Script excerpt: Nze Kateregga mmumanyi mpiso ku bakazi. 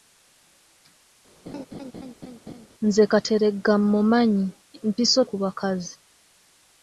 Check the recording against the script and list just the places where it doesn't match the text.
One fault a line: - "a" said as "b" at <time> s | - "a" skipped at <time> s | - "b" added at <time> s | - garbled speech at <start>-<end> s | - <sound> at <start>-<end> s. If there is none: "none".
- laugh at 1.5-2.7 s